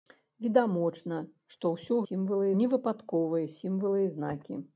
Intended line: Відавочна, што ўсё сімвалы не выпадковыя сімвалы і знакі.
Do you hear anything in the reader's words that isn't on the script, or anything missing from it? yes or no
no